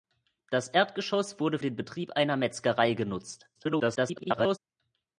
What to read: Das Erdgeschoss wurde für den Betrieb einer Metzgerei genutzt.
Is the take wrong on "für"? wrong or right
wrong